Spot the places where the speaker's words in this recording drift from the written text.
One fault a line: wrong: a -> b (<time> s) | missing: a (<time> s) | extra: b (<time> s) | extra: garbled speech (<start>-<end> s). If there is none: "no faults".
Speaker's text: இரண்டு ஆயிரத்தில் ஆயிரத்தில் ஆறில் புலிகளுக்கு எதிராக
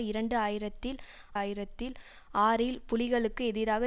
no faults